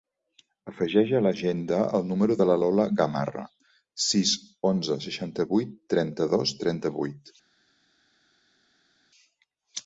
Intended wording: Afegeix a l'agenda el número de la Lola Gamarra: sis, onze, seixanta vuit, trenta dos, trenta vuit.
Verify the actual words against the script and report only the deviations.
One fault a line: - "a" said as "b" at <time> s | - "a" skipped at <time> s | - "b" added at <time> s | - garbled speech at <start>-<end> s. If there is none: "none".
none